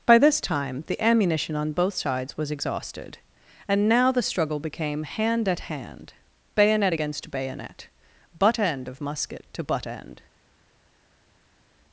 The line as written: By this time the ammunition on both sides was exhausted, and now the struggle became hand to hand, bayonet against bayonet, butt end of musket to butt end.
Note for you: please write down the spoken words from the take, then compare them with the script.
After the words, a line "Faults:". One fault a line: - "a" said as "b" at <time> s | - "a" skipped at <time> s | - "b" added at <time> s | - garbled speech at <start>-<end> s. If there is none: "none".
By this time the ammunition on both sides was exhausted, and now the struggle became hand at hand, bayonet against bayonet, butt end of musket to butt end.
Faults:
- "to" said as "at" at 5.5 s